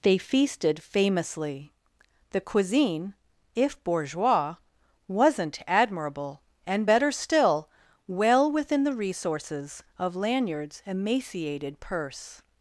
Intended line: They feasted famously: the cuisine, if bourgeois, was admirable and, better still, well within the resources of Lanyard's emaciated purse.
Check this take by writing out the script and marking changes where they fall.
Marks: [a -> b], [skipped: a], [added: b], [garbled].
They feasted famously: the cuisine, if bourgeois, [was -> wasn't] admirable and, better still, well within the resources of Lanyard's emaciated purse.